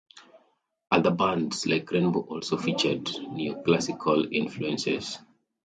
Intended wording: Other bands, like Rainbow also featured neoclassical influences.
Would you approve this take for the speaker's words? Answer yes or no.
yes